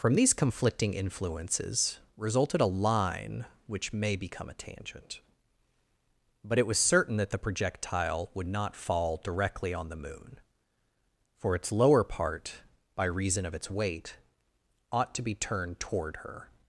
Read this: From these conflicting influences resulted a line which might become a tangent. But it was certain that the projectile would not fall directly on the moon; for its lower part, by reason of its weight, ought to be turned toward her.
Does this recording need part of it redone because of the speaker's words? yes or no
yes